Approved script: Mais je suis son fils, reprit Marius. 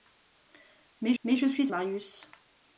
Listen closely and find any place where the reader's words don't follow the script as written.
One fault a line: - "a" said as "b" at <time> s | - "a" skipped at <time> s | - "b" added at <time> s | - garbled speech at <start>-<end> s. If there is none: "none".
- "mais" added at 1.2 s
- "son fils reprit" skipped at 1.7 s